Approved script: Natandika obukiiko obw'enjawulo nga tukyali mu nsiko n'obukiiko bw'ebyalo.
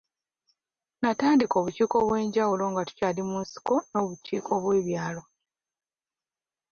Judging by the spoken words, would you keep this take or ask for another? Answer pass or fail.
pass